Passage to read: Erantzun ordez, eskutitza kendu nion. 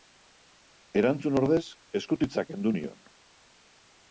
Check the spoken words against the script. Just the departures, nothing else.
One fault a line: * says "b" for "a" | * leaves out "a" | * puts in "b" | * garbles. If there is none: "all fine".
all fine